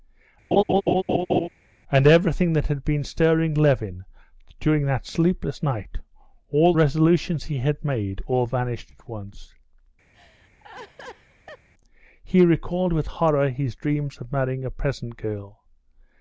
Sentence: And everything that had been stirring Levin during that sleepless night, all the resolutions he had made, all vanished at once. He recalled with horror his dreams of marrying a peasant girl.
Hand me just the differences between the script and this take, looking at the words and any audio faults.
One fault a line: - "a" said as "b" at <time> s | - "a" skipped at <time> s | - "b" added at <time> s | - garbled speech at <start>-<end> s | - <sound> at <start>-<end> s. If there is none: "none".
- laugh at 0.5-1.5 s
- "the" skipped at 6.7 s
- laugh at 10.1-11.7 s